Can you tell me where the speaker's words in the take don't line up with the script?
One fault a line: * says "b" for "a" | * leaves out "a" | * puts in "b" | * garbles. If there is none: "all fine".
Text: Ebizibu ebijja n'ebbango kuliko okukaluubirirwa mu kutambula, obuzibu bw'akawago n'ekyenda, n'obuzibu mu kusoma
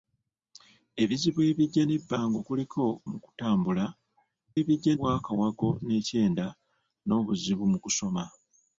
* leaves out "okukaluubirirwa"
* says "ebijja" for "obuzibu"